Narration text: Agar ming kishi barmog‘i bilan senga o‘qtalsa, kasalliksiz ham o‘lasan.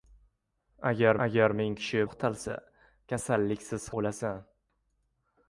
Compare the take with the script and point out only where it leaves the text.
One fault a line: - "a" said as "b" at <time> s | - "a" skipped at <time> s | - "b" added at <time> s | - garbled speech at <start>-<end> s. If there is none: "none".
- "agar" added at 1.3 s
- "barmog‘i bilan senga" skipped at 2.0 s
- "ham" skipped at 3.9 s